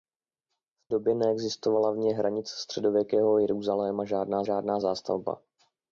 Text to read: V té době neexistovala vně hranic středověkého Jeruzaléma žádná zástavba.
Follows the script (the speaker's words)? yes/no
no